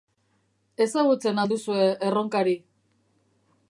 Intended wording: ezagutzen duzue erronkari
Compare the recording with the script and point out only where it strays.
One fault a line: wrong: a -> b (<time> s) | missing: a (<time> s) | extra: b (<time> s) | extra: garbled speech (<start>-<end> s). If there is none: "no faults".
extra: al (1.4 s)